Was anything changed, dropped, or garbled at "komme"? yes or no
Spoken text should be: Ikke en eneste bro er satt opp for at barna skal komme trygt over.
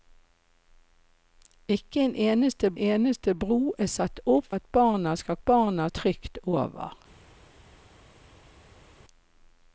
yes